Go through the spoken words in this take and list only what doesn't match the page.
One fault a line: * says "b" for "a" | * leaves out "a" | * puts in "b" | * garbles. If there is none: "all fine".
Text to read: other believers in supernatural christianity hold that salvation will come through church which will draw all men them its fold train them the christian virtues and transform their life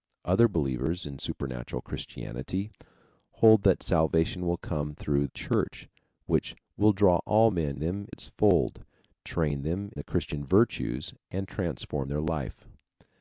all fine